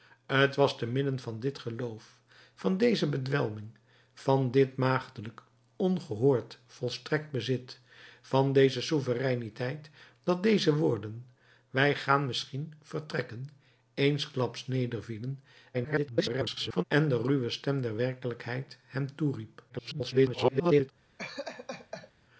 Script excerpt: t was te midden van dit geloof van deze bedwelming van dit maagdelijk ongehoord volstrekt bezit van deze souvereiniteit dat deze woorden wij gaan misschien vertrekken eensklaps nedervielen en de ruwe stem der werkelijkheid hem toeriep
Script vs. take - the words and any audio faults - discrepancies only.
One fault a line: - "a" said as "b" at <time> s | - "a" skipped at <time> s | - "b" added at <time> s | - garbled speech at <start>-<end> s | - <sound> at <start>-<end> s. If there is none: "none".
- garbled speech at 15.7-16.8 s
- garbled speech at 19.7-20.9 s
- laugh at 21.2-22.1 s